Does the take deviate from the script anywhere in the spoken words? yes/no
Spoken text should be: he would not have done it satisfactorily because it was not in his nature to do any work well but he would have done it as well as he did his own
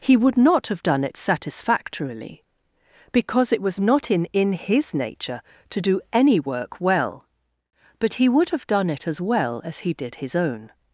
yes